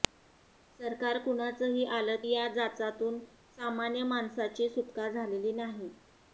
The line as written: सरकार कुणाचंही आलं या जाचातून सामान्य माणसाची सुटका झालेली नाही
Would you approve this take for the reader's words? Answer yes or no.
yes